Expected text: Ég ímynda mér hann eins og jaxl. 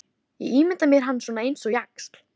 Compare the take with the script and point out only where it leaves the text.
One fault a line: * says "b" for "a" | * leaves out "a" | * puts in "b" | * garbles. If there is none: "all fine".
* puts in "svona"